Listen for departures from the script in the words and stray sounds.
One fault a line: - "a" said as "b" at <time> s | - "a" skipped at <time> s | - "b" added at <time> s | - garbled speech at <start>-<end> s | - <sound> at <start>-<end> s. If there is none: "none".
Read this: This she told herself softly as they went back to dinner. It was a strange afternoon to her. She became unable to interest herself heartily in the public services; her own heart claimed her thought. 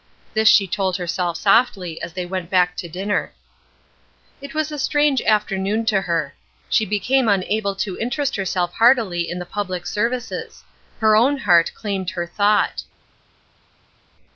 none